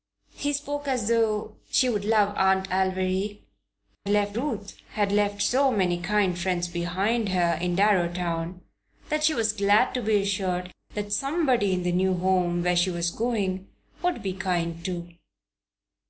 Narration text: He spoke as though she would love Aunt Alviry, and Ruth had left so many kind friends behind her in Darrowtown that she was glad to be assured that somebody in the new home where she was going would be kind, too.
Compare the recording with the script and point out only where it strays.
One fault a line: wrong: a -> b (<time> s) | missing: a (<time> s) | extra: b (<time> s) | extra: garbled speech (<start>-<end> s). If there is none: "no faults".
wrong: and -> left (4.1 s)